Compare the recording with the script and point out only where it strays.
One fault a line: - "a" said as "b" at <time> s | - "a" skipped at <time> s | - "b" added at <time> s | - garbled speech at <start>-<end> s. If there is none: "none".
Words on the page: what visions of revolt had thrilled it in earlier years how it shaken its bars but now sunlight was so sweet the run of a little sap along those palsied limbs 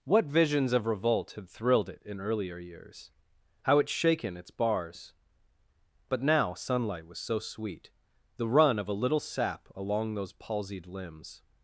none